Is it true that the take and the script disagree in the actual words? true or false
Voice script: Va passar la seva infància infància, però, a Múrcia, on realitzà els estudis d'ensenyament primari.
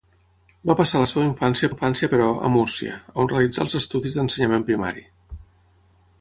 false